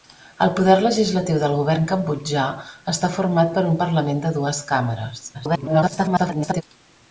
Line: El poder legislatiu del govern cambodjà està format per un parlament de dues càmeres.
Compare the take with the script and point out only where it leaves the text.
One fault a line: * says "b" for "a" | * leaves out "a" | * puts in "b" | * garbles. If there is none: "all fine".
* garbles